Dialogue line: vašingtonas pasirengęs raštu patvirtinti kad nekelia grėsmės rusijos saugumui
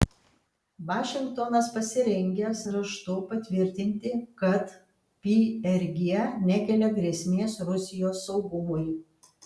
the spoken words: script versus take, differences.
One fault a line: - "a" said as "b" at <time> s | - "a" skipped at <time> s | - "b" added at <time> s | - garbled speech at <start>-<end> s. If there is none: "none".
- "prg" added at 5.3 s